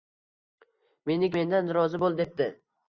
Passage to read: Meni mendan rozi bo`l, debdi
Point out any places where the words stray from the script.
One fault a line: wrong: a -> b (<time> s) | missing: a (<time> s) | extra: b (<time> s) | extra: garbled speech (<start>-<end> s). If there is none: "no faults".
no faults